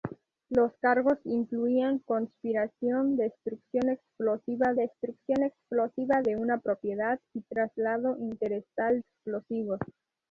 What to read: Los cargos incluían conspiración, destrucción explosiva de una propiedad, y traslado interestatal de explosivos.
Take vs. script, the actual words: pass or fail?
fail